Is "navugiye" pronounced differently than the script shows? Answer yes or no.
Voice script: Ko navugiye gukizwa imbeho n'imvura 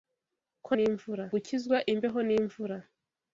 yes